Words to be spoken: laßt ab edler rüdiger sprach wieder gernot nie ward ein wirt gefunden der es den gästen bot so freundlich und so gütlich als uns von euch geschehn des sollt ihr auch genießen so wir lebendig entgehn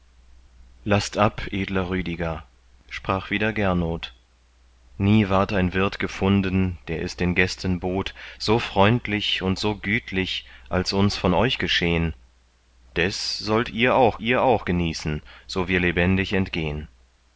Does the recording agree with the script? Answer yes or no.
no